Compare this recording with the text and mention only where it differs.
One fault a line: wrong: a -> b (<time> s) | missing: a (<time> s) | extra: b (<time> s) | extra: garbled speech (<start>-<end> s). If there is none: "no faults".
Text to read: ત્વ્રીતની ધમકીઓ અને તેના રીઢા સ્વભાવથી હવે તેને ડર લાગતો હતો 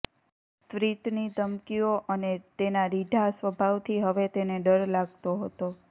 no faults